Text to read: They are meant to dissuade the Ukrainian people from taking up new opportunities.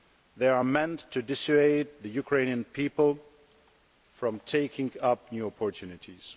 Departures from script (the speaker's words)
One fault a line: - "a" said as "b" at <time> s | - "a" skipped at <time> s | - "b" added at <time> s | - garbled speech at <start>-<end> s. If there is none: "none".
none